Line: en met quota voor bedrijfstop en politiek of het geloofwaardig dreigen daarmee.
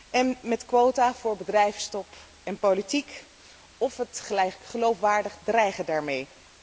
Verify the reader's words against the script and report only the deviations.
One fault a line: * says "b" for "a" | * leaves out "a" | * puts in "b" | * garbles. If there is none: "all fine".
all fine